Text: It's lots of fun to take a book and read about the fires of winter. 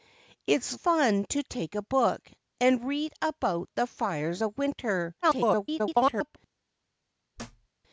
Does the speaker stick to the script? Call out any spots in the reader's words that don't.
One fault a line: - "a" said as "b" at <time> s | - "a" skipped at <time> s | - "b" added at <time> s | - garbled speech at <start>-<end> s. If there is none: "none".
- "lots of" skipped at 0.8 s
- garbled speech at 5.2-6.4 s